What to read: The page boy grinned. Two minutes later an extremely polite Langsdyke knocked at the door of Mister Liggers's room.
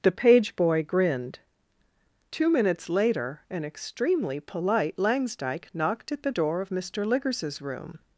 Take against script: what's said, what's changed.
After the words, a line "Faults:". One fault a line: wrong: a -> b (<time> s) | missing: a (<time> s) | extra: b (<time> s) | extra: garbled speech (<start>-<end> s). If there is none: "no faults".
The page boy grinned. Two minutes later an extremely polite Langsdyke knocked at the door of Mister Liggers's room.
Faults:
no faults